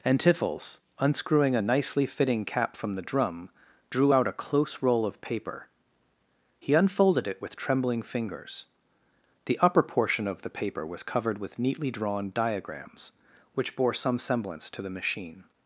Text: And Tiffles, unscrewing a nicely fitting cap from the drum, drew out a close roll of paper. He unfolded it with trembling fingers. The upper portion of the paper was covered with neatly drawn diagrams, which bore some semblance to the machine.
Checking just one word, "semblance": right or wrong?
right